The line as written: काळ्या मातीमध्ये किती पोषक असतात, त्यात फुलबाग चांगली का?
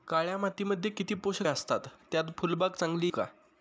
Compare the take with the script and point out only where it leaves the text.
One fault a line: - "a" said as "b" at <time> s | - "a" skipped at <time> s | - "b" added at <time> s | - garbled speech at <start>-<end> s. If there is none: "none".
none